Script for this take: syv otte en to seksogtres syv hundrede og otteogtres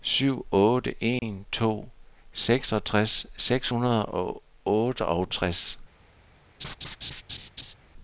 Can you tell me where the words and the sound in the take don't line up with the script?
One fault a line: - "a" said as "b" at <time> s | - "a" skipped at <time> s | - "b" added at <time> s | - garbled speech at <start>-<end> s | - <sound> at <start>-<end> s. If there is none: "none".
- dropout at 1.2-1.2 s
- "syv" said as "seks" at 3.4 s
- laugh at 6.6-7.7 s